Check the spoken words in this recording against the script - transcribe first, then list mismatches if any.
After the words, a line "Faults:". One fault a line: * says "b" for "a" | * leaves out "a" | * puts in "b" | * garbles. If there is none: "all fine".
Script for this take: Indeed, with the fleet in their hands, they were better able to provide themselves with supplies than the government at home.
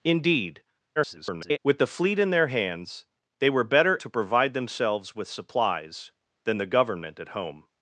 Indeed, [garbled] with the fleet in their hands, they were better to provide themselves with supplies than the government at home.
Faults:
* garbles
* leaves out "able"